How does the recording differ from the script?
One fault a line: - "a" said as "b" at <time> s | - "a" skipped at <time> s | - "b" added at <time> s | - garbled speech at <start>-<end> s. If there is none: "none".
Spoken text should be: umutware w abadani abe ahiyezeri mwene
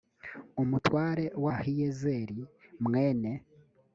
- "abadani abe" skipped at 1.4 s